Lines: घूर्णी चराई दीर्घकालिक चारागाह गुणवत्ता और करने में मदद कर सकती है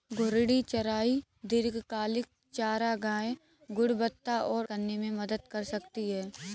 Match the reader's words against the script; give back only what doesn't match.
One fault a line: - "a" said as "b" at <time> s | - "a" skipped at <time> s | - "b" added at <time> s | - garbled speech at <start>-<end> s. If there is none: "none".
none